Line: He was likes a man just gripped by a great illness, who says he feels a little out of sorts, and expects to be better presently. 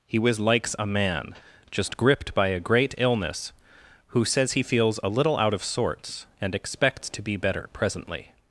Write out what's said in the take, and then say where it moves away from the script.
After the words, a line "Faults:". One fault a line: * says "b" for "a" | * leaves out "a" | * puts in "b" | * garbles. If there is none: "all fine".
He was likes a man just gripped by a great illness, who says he feels a little out of sorts, and expects to be better presently.
Faults:
all fine